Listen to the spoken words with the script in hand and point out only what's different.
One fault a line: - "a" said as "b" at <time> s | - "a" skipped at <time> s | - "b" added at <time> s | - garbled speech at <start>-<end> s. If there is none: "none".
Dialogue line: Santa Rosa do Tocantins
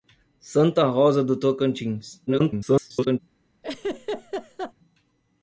- garbled speech at 2.3-3.2 s